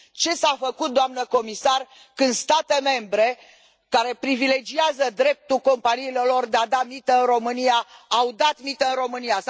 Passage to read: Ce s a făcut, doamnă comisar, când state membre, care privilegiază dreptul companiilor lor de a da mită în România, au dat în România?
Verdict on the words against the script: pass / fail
fail